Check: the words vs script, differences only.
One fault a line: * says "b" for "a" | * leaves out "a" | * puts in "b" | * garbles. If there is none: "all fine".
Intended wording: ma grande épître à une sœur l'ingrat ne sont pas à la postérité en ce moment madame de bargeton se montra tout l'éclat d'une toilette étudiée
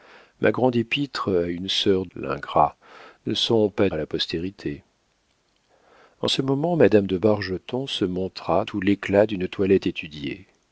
all fine